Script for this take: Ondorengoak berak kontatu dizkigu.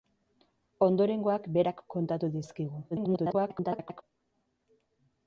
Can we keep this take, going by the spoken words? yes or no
no